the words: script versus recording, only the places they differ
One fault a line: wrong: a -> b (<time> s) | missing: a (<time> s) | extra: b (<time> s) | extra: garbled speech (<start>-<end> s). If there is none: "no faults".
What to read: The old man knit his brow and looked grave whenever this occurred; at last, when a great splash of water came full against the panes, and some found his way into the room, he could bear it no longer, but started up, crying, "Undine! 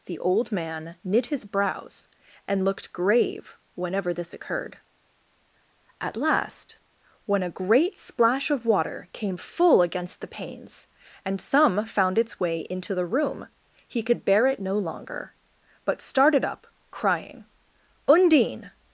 wrong: brow -> brows (1.4 s)
wrong: his -> its (12.2 s)